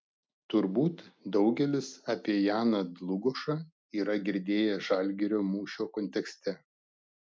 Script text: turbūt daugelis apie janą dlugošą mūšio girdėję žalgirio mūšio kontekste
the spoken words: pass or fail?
fail